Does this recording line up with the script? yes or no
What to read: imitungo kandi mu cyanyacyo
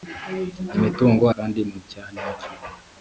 yes